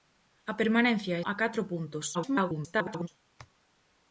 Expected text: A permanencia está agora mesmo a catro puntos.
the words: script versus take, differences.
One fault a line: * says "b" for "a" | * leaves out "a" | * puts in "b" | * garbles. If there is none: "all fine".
* leaves out "está agora mesmo"
* garbles